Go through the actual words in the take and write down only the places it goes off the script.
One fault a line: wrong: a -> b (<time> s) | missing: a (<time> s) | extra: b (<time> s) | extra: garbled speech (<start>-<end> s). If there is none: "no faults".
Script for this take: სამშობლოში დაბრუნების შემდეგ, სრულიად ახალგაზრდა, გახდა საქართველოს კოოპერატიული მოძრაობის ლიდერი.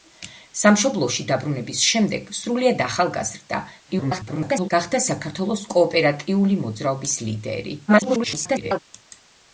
extra: garbled speech (3.9-4.7 s)
extra: garbled speech (7.9-8.8 s)